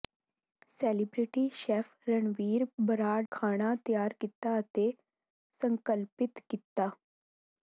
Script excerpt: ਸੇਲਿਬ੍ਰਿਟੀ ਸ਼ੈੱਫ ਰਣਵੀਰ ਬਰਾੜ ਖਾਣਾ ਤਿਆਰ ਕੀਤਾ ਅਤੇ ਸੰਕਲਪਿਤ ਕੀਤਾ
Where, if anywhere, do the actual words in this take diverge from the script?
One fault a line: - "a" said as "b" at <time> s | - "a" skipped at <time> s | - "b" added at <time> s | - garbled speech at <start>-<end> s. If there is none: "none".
none